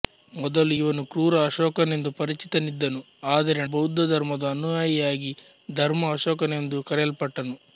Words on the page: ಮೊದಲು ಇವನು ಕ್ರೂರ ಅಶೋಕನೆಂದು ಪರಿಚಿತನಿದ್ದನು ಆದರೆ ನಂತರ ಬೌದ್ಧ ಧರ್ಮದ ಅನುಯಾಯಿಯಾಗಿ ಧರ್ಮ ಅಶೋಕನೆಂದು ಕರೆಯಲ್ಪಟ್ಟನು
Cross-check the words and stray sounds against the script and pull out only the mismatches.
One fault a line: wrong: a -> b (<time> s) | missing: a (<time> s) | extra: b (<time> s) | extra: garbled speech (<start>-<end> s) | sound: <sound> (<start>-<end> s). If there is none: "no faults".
missing: ನಂತರ (3.6 s)